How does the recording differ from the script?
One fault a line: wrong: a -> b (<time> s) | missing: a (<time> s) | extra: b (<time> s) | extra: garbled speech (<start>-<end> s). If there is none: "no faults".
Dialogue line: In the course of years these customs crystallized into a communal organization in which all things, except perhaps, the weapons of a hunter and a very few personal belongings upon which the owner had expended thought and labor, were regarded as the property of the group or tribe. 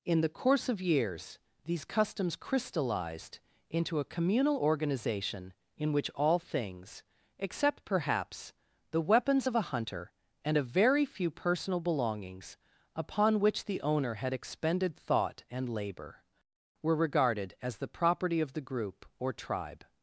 no faults